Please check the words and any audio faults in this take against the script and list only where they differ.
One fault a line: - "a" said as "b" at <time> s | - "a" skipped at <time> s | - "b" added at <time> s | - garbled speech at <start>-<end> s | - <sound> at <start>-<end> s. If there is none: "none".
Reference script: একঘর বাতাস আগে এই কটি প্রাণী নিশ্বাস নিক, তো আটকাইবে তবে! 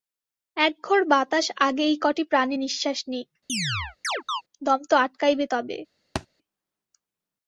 - chirp at 3.5-4.4 s
- "দম" added at 4.6 s
- thud at 6.2-6.3 s